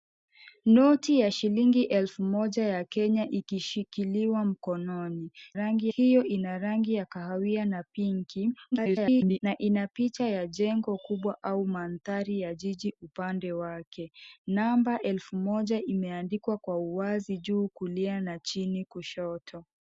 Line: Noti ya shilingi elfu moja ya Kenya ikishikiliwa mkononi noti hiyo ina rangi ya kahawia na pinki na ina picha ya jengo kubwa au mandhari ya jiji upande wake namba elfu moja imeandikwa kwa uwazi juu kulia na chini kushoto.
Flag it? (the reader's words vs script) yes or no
yes